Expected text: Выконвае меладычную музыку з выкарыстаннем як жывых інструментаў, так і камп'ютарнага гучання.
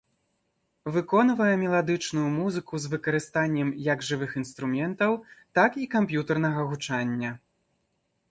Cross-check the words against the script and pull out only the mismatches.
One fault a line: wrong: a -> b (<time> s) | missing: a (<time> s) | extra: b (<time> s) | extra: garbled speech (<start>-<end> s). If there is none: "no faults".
no faults